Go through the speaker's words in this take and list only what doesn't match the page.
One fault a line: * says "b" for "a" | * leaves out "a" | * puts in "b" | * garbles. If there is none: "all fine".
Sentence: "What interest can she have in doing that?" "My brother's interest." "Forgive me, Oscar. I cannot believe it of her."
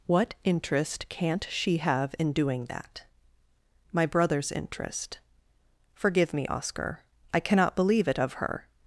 * says "can't" for "can"